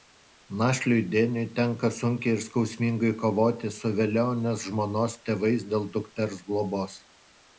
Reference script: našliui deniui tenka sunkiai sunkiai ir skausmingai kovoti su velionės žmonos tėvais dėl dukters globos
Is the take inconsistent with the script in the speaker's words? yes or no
yes